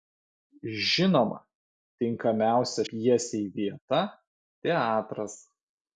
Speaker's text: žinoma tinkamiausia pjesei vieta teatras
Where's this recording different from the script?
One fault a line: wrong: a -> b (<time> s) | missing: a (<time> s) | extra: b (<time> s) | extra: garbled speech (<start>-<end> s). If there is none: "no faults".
no faults